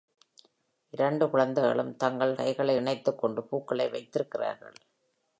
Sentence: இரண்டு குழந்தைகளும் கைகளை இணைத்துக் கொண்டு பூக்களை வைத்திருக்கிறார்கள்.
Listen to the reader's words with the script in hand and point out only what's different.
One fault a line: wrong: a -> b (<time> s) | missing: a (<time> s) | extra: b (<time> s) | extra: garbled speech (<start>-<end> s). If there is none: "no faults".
extra: தங்கள் (1.9 s)